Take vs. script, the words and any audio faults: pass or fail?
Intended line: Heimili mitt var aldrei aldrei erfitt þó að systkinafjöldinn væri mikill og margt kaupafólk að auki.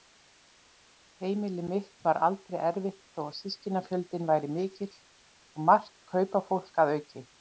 fail